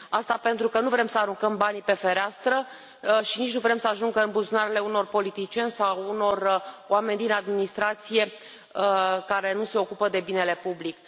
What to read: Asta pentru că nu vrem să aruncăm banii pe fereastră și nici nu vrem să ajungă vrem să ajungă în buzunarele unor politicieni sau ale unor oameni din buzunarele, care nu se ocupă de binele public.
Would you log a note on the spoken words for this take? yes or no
yes